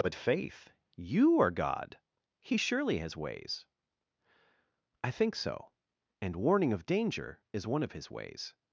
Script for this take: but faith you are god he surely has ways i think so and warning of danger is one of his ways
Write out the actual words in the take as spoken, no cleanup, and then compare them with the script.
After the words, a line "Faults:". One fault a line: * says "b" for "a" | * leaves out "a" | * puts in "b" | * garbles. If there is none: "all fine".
but faith you are god he surely has ways i think so and warning of danger is one of his ways
Faults:
all fine